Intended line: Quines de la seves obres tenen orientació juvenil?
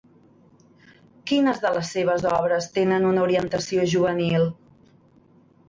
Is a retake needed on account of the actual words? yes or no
yes